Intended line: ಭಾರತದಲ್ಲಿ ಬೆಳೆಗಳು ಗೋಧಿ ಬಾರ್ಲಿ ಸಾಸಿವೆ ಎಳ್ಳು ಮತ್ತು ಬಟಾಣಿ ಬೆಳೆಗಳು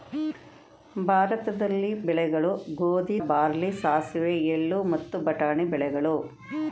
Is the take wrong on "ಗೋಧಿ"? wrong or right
right